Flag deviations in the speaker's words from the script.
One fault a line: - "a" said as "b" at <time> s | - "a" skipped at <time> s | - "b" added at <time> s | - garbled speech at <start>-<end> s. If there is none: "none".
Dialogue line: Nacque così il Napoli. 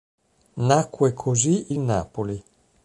none